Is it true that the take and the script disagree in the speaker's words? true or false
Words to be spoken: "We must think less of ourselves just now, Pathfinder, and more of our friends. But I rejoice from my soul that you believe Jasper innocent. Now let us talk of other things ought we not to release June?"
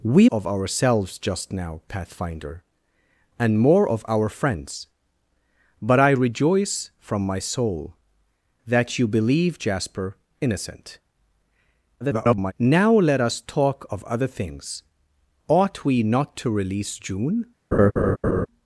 true